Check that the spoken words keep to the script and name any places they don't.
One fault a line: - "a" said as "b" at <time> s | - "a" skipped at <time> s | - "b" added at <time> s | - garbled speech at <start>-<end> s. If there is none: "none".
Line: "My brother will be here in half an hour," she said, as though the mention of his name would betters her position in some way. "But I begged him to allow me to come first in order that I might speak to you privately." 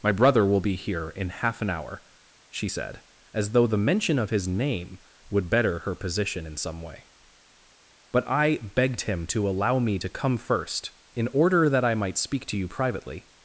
- "betters" said as "better" at 5.5 s